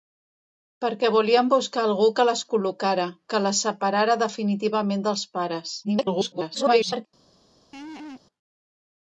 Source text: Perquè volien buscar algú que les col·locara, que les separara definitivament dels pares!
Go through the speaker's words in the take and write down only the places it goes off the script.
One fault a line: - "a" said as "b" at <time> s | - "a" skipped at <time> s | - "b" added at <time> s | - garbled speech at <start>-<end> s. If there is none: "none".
- garbled speech at 5.8-7.1 s